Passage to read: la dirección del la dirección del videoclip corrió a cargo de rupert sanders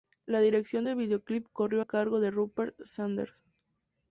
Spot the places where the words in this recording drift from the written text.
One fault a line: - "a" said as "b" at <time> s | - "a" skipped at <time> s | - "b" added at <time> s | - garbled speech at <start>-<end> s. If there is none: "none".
- "la dirección del" skipped at 1.0 s